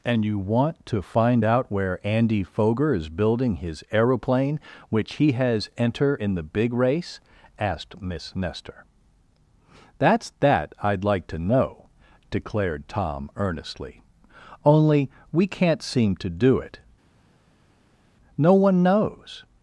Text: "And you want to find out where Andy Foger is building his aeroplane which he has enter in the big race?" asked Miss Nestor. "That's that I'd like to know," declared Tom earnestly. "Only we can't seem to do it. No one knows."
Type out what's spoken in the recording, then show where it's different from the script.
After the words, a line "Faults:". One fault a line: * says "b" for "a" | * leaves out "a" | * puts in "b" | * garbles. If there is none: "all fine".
"And you want to find out where Andy Foger is building his aeroplane which he has enter in the big race?" asked Miss Nestor. "That's that I'd like to know," declared Tom earnestly. "Only we can't seem to do it. No one knows."
Faults:
all fine